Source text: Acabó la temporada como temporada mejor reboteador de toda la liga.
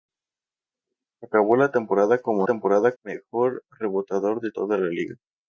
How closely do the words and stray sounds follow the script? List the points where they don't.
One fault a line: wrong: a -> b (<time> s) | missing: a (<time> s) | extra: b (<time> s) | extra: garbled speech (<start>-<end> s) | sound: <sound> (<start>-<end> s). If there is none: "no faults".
no faults